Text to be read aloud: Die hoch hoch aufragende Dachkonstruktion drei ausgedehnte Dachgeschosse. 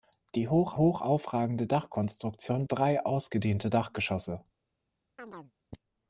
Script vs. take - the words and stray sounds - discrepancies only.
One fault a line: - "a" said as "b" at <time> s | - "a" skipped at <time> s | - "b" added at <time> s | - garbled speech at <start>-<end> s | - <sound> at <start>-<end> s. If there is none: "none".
- chirp at 5.2-5.5 s